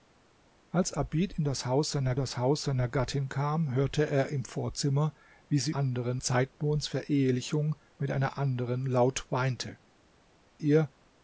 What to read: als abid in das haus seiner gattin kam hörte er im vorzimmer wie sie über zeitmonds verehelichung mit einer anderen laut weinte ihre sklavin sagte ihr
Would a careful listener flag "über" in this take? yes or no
yes